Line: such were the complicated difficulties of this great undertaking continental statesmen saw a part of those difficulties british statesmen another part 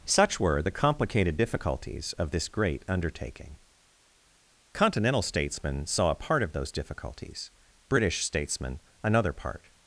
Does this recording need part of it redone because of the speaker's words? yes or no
no